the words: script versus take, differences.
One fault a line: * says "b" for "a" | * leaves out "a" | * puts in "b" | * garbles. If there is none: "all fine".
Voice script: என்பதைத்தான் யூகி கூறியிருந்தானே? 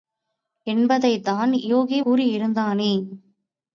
all fine